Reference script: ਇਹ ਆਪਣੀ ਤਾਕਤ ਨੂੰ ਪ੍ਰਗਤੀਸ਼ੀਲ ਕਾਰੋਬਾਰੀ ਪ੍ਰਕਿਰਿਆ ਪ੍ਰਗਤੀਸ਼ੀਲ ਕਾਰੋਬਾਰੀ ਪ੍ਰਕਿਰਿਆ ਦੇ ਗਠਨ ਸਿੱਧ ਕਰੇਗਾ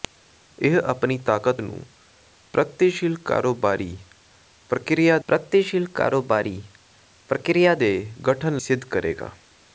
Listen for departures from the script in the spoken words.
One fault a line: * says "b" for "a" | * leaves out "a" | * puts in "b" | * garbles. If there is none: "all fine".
all fine